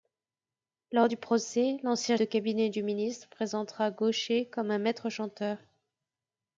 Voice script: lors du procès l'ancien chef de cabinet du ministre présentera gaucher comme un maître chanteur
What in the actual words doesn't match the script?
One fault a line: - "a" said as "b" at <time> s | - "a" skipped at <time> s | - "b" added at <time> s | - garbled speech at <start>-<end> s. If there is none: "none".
- "chef" skipped at 2.2 s